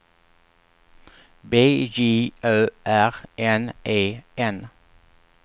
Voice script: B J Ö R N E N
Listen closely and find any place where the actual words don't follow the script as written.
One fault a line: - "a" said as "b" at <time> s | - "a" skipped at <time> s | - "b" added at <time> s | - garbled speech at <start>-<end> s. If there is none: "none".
none